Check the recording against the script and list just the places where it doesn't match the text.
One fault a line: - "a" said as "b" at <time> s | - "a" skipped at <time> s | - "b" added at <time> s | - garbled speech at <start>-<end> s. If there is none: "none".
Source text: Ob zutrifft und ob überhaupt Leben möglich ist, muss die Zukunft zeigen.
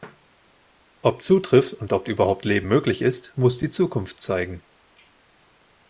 none